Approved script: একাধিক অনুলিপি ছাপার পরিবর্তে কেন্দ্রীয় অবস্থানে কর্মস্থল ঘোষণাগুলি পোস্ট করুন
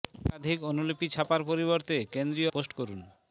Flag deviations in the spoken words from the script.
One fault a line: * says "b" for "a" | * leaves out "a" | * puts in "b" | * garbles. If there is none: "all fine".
* leaves out "অবস্থানে কর্মস্থল ঘোষণাগুলি"